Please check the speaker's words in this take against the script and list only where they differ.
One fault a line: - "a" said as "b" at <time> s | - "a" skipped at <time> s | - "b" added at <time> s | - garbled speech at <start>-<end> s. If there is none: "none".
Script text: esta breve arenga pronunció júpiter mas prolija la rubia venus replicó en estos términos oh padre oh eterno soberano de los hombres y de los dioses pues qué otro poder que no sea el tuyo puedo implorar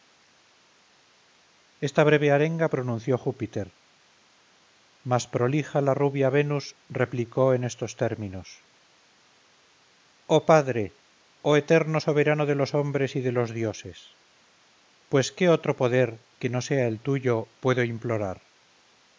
none